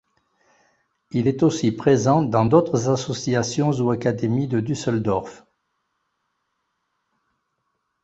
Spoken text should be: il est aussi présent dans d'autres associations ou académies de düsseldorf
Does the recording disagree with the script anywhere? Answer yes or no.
no